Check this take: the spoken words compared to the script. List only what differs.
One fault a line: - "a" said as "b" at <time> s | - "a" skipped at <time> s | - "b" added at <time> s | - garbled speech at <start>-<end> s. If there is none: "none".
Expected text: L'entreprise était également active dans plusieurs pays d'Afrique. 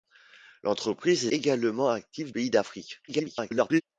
- "était" skipped at 1.3 s
- "dans plusieurs" skipped at 2.3 s
- garbled speech at 3.1-3.8 s